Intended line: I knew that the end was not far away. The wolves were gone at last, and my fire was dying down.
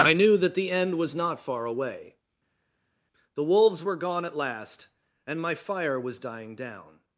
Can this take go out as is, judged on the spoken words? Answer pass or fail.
pass